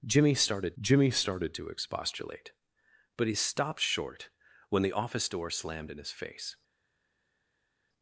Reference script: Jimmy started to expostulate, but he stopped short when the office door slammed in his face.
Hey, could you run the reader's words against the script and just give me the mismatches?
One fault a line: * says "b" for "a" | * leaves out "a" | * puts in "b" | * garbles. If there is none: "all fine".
* puts in "jimmy started"